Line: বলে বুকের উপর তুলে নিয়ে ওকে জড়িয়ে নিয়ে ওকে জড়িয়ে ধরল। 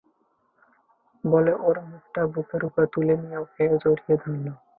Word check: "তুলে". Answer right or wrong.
right